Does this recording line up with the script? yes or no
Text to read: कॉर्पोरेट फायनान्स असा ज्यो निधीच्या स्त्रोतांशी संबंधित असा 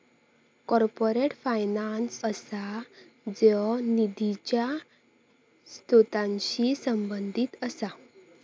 yes